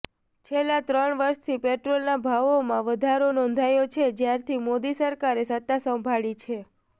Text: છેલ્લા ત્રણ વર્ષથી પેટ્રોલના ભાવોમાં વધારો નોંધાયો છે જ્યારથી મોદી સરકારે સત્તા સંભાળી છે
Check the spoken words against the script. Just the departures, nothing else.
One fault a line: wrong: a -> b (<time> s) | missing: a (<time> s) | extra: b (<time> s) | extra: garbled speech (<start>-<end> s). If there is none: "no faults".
no faults